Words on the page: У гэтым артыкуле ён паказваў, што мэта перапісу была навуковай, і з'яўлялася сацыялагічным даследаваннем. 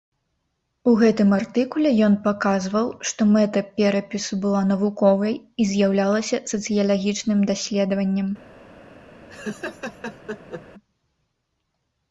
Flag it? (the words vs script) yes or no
no